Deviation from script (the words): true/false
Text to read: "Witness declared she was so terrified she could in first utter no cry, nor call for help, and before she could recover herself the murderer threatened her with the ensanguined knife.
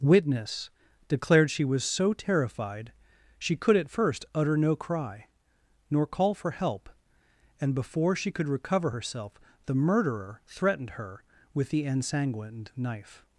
true